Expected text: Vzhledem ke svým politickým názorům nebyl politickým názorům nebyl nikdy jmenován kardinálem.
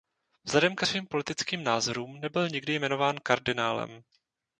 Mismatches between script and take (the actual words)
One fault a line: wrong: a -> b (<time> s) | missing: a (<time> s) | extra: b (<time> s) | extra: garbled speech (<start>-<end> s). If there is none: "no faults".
missing: politickým názorům nebyl (2.5 s)